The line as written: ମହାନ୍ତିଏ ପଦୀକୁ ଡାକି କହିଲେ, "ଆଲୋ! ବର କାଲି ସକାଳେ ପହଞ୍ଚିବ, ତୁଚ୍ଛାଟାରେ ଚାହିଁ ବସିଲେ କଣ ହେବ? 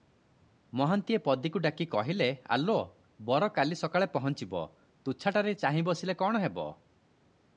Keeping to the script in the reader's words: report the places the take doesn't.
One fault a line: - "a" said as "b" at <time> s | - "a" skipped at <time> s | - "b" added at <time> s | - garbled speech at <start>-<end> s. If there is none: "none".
none